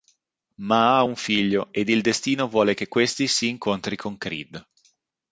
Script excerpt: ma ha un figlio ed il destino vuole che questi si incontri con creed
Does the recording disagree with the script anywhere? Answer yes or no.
no